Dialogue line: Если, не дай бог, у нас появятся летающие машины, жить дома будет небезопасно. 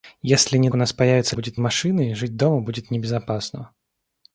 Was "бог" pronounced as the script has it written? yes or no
no